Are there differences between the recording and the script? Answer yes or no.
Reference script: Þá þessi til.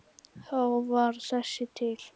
yes